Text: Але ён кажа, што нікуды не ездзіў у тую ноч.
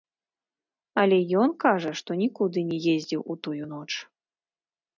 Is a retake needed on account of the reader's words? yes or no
no